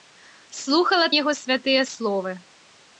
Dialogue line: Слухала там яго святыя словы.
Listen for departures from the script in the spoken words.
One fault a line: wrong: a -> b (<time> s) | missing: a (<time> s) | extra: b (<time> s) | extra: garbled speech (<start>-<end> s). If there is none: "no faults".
missing: там (1.1 s)